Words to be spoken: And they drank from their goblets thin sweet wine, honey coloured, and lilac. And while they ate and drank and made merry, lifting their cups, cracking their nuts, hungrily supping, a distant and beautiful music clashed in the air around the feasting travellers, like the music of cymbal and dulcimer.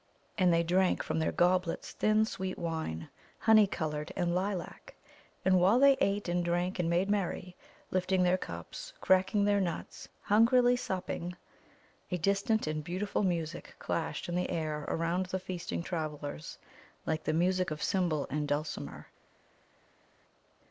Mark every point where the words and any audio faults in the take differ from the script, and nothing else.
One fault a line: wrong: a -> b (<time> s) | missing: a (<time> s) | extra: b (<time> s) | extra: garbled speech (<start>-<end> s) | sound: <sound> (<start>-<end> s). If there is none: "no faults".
no faults